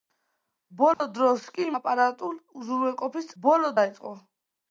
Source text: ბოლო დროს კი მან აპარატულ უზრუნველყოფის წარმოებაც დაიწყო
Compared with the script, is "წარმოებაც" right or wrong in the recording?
wrong